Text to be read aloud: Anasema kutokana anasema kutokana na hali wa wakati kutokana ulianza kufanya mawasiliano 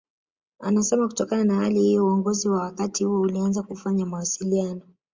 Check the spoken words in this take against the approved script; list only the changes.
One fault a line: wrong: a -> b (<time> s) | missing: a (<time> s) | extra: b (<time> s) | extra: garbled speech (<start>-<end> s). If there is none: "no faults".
wrong: anasema kutokana na hali -> na hali hiyo uongozi (1.4 s)
wrong: kutokana -> huo (3.0 s)